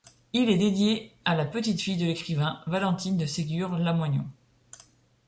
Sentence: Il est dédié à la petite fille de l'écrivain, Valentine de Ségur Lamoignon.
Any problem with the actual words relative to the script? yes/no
no